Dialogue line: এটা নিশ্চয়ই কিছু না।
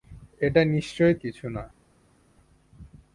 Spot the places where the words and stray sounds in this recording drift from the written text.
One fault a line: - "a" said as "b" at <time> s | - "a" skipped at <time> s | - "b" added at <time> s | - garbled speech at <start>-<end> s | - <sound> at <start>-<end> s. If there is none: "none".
none